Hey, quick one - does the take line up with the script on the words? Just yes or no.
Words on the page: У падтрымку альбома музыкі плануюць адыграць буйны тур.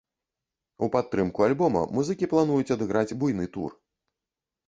yes